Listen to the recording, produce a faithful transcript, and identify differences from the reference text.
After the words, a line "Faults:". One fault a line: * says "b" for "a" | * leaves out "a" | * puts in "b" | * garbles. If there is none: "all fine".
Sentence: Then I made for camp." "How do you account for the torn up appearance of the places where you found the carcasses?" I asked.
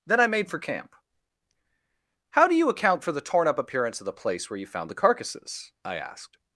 Then I made for camp." "How do you account for the torn up appearance of the place where you found the carcasses?" I asked.
Faults:
* says "place" for "places"